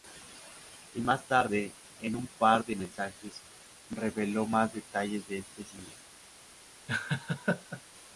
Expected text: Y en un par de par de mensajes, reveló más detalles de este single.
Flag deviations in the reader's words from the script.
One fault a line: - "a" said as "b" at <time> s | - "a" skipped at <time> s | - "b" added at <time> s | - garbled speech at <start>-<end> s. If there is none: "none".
- "más tarde" added at 1.0 s
- "par de" skipped at 2.8 s